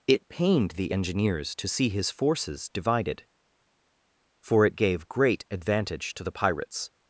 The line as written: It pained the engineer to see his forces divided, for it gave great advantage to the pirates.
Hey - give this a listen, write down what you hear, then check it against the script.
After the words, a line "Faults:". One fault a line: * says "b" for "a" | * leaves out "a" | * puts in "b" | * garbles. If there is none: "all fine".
It pained the engineers to see his forces divided, for it gave great advantage to the pirates.
Faults:
* says "engineers" for "engineer"